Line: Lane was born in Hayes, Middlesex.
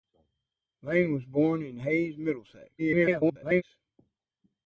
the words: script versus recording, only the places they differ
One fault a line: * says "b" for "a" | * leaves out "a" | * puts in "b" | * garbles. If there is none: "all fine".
* garbles